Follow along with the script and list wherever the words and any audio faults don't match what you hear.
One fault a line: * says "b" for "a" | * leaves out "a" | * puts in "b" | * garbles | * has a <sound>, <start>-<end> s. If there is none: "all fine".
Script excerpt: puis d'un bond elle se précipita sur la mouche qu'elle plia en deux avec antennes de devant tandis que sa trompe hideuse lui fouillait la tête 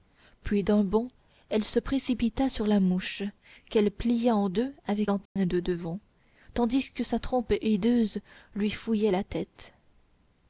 * has a dropout, 5.3-5.4 s